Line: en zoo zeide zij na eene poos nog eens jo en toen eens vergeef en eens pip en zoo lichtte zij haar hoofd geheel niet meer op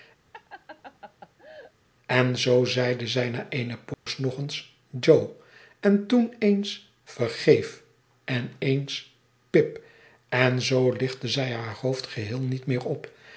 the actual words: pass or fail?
pass